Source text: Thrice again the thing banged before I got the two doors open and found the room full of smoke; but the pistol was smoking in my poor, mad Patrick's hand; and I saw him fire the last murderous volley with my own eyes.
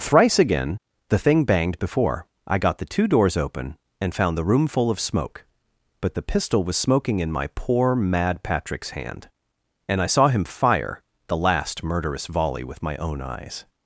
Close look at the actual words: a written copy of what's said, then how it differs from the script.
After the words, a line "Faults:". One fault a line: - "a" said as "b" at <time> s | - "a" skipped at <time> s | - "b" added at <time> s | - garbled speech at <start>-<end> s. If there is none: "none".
Thrice again the thing banged before I got the two doors open and found the room full of smoke; but the pistol was smoking in my poor, mad Patrick's hand; and I saw him fire the last murderous volley with my own eyes.
Faults:
none